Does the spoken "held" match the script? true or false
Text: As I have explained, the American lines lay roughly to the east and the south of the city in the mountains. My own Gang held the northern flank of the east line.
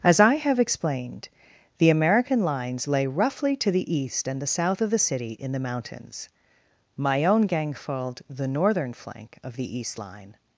false